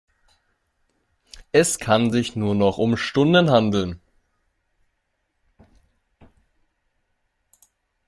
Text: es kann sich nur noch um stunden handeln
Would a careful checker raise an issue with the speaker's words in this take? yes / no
no